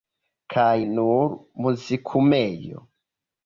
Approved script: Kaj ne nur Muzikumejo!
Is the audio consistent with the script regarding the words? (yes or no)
no